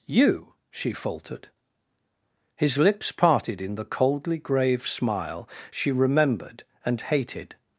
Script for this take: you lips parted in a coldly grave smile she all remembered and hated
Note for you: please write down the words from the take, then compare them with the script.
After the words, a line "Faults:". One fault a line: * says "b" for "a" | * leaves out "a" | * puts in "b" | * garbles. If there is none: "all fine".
you she faltered his lips parted in the coldly grave smile she remembered and hated
Faults:
* puts in "she faltered his"
* says "the" for "a"
* leaves out "all"